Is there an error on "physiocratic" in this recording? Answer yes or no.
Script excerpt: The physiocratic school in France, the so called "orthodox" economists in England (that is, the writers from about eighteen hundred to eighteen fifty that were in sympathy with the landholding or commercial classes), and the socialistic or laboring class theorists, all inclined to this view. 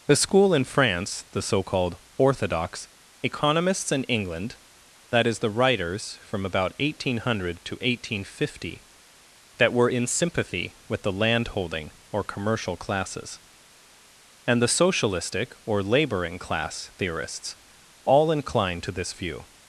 yes